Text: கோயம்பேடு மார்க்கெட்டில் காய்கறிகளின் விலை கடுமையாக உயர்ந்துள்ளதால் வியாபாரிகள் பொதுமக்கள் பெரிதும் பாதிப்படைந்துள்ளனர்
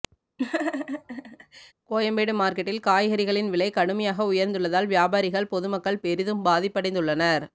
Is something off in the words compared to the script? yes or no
no